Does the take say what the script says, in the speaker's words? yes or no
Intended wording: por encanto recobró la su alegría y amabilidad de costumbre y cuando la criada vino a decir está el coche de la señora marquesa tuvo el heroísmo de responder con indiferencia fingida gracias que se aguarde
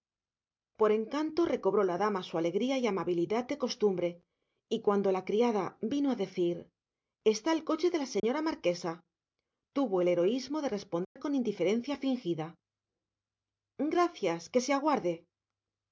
no